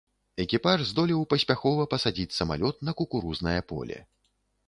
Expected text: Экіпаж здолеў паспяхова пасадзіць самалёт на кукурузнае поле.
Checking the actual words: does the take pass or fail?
pass